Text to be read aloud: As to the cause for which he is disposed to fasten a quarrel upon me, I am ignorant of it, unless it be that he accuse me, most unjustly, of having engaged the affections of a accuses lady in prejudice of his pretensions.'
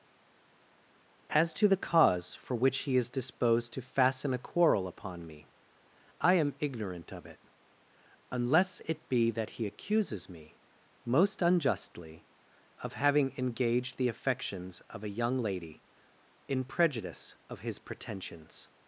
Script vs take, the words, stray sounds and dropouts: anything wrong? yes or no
yes